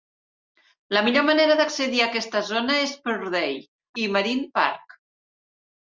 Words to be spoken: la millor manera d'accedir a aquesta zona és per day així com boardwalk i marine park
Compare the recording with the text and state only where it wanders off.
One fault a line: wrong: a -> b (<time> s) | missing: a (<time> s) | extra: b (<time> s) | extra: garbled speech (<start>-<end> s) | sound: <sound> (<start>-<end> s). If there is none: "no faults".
missing: així com boardwalk (3.5 s)